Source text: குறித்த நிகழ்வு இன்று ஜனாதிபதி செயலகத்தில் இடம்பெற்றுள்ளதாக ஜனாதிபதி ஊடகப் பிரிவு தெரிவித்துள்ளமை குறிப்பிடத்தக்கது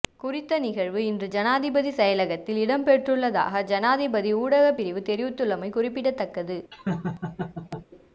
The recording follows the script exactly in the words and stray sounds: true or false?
false